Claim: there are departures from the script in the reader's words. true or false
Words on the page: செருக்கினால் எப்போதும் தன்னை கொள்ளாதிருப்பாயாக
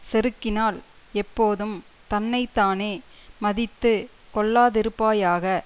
true